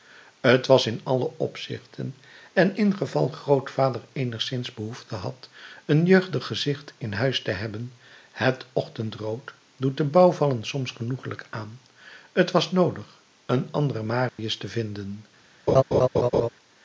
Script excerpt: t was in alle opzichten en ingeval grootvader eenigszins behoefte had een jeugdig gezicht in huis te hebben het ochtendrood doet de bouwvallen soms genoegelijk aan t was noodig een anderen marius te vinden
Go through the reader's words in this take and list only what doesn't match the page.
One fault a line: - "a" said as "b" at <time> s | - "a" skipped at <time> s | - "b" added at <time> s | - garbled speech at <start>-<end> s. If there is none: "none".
none